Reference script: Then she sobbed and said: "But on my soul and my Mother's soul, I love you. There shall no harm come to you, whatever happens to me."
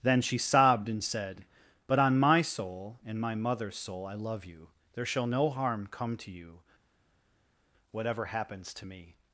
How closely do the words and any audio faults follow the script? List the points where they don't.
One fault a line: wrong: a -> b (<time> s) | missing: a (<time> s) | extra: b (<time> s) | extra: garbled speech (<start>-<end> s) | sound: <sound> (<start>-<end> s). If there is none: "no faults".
no faults